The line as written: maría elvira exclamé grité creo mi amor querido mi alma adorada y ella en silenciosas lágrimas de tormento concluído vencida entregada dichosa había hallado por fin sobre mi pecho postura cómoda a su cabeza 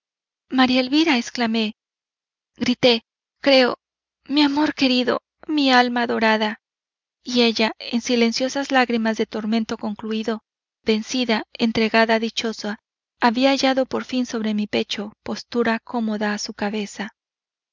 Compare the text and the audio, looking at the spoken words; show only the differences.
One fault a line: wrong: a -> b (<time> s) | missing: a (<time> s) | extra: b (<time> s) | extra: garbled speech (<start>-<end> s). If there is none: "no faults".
no faults